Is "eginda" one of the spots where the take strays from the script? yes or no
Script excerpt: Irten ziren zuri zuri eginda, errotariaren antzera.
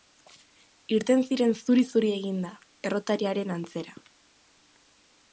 no